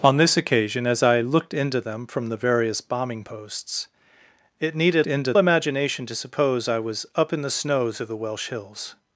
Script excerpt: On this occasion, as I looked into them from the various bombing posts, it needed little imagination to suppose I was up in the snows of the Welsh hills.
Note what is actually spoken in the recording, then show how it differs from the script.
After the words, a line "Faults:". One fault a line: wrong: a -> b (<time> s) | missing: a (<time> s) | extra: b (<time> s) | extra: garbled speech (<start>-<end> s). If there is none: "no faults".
On this occasion, as I looked into them from the various bombing posts, it needed into imagination to suppose I was up in the snows of the Welsh hills.
Faults:
wrong: little -> into (5.1 s)